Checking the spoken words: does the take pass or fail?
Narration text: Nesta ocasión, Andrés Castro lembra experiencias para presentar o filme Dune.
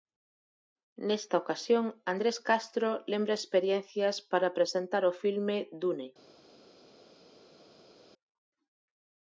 pass